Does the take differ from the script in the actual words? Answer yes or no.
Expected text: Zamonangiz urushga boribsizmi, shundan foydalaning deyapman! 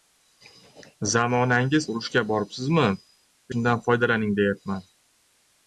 no